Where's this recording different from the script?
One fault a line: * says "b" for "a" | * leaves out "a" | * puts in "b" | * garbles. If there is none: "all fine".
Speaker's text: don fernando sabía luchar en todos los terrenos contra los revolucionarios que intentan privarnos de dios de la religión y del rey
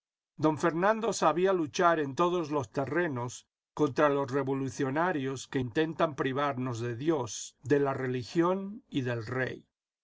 all fine